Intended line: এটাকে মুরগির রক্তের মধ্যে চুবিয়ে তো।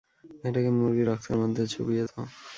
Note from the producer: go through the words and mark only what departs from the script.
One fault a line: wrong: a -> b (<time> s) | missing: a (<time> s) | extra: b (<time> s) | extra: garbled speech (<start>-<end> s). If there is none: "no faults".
no faults